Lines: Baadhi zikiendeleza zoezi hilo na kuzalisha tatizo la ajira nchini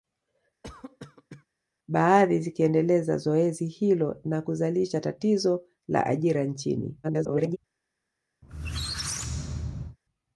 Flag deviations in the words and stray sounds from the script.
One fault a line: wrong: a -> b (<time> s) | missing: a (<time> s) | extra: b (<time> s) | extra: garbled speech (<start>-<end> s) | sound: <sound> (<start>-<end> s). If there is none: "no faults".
sound: cough (0.6-1.5 s)
extra: garbled speech (7.0-7.6 s)
sound: squeak (8.4-10.0 s)